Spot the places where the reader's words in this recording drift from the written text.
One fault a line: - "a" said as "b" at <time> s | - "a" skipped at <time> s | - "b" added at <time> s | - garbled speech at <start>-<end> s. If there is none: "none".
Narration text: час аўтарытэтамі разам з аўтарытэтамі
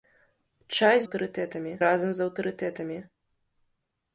none